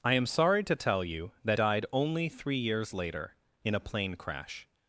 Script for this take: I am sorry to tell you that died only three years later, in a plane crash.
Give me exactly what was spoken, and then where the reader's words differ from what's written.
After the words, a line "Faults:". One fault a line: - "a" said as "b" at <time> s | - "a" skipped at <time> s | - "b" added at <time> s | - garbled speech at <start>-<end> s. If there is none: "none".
I am sorry to tell you that died only three years later, in a plane crash.
Faults:
none